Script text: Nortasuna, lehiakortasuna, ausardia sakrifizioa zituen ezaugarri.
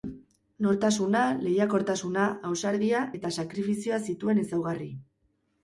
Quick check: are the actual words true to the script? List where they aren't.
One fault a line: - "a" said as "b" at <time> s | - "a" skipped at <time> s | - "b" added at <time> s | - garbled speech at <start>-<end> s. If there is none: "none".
- "eta" added at 3.2 s